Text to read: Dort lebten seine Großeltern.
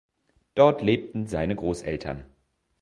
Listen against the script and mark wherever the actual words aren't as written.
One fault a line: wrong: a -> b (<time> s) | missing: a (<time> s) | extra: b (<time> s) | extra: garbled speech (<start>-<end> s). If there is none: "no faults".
no faults